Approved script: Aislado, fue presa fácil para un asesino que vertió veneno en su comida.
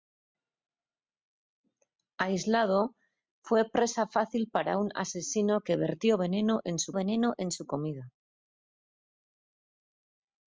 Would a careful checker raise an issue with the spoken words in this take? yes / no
yes